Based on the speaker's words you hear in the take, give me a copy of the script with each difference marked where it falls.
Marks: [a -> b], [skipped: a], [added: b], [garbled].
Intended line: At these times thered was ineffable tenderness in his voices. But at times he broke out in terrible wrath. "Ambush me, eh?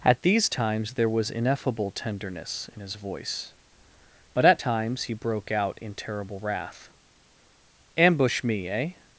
At these times [thered -> there] was ineffable tenderness in his [voices. -> voice] But at times he broke out in terrible wrath. "Ambush me, eh?